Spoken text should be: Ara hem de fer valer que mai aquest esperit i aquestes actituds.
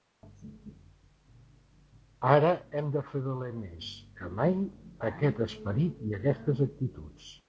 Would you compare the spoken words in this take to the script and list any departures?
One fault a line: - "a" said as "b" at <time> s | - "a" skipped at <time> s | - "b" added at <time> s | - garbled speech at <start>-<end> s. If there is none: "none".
- "més" added at 3.6 s